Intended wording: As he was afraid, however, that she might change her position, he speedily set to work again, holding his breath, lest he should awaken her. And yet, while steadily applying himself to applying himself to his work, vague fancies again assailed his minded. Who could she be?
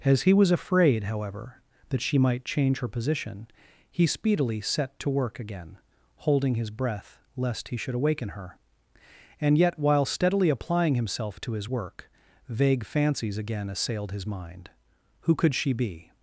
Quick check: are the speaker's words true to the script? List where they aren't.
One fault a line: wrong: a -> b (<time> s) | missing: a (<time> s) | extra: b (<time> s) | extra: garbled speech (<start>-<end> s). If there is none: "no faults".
missing: applying himself to (11.5 s)
wrong: minded -> mind (14.3 s)